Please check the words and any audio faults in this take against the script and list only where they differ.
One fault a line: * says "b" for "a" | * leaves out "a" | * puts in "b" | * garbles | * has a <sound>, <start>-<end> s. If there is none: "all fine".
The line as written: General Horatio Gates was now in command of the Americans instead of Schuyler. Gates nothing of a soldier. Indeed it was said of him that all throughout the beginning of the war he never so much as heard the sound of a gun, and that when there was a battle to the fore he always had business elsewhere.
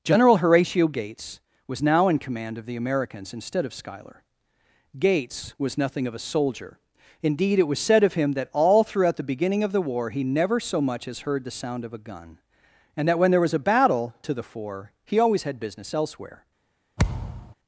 * puts in "was"
* has a thud, 17.0-17.5 s